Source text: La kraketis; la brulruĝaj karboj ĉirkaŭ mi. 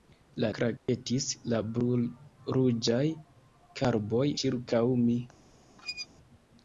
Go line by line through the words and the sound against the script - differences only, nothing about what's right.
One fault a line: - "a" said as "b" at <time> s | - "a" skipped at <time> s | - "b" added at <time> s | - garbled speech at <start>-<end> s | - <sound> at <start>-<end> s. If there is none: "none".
- dropout at 0.8-0.9 s
- squeak at 5.8-6.1 s